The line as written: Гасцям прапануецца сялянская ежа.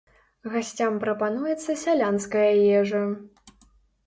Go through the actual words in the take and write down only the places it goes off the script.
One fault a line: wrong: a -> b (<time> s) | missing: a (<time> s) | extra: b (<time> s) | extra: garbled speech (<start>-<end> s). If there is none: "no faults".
no faults